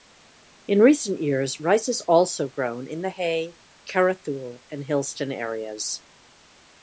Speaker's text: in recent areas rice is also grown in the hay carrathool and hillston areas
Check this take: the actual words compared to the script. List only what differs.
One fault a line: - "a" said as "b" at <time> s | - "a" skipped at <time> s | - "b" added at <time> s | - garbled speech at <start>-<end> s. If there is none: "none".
- "areas" said as "years" at 1.2 s